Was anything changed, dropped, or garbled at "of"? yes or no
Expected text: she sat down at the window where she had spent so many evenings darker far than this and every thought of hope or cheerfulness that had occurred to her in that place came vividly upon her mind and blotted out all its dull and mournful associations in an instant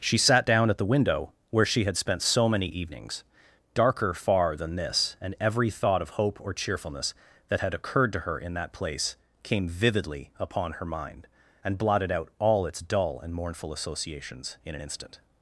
no